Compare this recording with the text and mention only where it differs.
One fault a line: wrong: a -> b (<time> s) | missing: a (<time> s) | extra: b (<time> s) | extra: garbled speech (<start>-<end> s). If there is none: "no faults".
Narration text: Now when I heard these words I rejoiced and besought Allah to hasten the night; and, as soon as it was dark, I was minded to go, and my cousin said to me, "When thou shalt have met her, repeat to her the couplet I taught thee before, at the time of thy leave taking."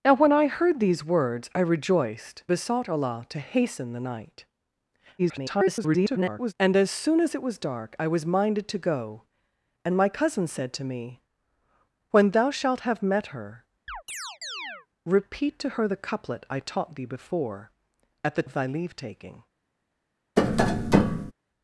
missing: and (2.4 s)
extra: garbled speech (5.2-6.5 s)
missing: time (18.5 s)